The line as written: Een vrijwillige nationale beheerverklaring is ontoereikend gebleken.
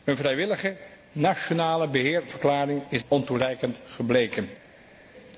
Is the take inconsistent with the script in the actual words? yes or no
no